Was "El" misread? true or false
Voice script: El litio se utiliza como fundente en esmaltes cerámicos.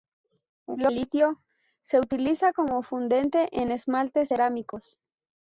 false